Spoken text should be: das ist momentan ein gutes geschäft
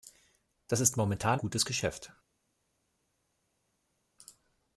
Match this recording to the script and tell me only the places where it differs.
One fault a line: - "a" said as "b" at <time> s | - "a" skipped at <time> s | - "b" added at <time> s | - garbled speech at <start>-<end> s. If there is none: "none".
- "ein" skipped at 1.4 s